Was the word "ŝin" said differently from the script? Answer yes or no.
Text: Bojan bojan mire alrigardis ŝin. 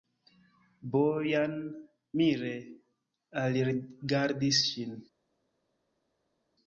no